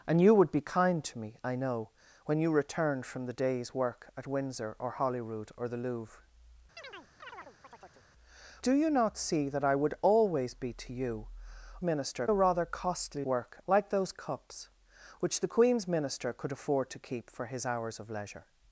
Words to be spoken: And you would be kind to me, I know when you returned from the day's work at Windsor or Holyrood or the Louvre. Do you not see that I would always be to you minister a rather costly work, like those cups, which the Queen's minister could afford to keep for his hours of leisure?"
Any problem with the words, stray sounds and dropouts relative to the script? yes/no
yes